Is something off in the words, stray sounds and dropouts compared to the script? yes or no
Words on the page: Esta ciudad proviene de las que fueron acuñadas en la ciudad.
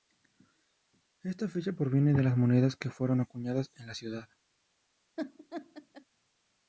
yes